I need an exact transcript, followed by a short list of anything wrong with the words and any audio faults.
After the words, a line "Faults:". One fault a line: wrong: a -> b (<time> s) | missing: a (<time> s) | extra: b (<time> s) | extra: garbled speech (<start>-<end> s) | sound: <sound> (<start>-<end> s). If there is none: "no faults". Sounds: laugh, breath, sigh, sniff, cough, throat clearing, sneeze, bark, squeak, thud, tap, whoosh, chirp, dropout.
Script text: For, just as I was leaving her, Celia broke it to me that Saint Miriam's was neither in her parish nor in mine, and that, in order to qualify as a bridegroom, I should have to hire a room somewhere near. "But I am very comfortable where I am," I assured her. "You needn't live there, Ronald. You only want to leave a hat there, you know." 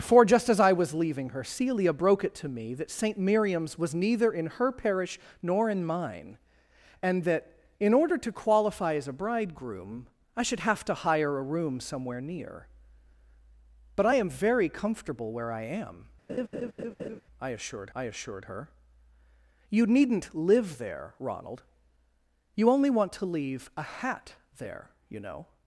For, just as I was leaving her, Celia broke it to me that Saint Miriam's was neither in her parish nor in mine, and that, in order to qualify as a bridegroom, I should have to hire a room somewhere near. "But I am very comfortable where I am," I assured I assured her. "You needn't live there, Ronald. You only want to leave a hat there, you know."
Faults:
sound: laugh (16.3-17.2 s)
extra: I assured (17.9 s)